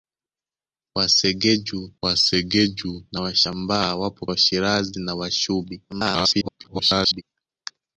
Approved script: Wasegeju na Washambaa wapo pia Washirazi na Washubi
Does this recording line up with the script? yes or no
no